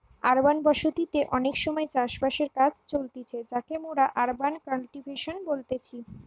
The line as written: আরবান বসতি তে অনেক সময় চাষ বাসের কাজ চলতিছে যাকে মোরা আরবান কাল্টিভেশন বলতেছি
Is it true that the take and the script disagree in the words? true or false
false